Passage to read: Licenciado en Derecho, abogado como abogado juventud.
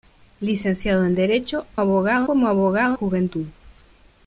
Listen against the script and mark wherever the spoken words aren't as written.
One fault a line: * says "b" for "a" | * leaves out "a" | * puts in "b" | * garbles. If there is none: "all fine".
all fine